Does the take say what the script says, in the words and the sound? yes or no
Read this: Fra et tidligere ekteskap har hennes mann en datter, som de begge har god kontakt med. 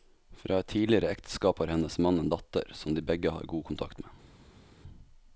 yes